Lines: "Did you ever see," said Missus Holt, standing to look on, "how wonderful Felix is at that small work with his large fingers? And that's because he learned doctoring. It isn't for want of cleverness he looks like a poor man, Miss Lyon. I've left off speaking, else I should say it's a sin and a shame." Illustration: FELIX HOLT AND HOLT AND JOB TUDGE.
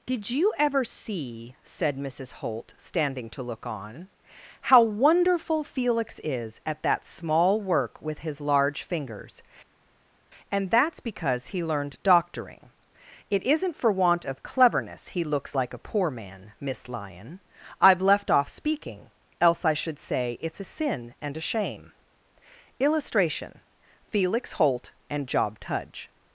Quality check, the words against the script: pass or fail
fail